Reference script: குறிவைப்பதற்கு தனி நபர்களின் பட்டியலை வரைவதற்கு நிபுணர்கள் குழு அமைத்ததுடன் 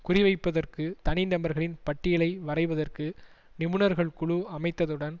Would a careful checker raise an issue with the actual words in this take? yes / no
no